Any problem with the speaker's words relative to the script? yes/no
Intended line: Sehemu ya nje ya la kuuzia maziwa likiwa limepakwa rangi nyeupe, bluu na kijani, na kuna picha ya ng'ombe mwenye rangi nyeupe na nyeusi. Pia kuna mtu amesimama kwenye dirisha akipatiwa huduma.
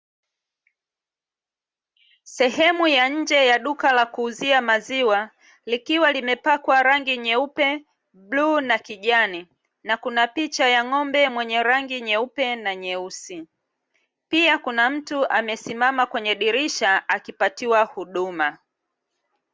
yes